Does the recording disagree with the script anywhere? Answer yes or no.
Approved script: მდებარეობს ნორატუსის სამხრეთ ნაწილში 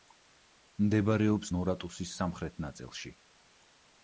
no